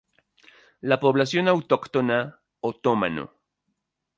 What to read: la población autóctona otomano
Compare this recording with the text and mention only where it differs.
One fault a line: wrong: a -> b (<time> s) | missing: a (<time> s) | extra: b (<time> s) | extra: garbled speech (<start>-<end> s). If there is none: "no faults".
no faults